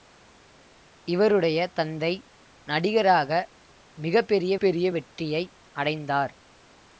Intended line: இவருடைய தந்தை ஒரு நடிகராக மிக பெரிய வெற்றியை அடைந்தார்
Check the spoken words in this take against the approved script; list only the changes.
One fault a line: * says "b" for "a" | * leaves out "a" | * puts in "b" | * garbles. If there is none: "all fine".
* leaves out "ஒரு"
* puts in "பெரிய"